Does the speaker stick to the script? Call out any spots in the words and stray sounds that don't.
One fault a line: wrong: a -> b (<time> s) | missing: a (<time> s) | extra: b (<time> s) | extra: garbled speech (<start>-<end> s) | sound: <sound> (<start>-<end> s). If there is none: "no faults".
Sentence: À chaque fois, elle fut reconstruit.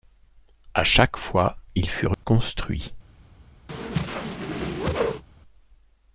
wrong: elle -> il (1.8 s)
sound: dropout (2.1-2.2 s)
sound: whoosh (3.7-5.2 s)